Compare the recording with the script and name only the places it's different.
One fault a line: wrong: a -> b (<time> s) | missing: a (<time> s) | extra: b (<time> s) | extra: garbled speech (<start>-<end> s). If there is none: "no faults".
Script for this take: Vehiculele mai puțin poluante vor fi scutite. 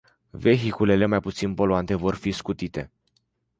no faults